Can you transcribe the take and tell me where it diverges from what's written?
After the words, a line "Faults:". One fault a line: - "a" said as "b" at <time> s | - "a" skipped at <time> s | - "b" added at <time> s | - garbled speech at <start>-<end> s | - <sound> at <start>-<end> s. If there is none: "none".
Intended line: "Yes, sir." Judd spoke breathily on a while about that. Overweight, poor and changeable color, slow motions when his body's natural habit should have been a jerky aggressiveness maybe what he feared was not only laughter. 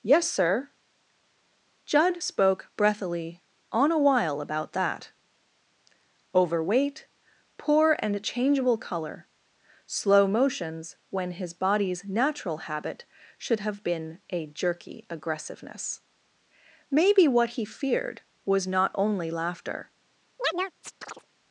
"Yes, sir." Judd spoke breathily on a while about that. Overweight, poor and changeable color, slow motions when his body's natural habit should have been a jerky aggressiveness maybe what he feared was not only laughter.
Faults:
- chirp at 20.4-21.3 s